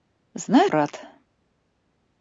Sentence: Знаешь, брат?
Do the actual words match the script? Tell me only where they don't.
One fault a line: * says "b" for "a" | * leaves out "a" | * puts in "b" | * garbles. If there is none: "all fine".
all fine